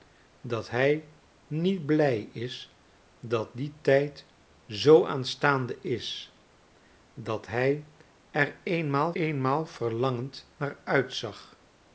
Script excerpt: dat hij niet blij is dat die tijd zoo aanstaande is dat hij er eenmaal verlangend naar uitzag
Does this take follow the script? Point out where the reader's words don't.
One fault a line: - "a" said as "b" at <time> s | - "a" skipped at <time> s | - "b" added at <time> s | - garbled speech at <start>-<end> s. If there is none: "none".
- "eenmaal" added at 9.1 s